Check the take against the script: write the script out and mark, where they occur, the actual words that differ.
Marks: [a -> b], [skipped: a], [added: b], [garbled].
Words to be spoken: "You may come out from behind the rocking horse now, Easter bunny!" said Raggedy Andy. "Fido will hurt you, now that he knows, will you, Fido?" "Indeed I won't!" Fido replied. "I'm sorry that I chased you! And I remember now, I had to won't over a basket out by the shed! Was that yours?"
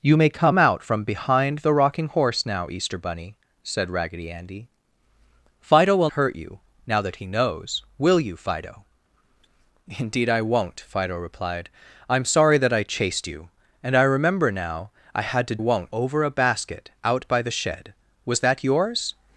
"You may come out from behind the rocking horse now, Easter bunny!" said Raggedy Andy. "Fido will hurt you, now that he knows, will you, Fido?" "Indeed I won't!" Fido replied. "I'm sorry that I chased you! And I remember now, I had to won't over a basket out by the shed! Was that yours?"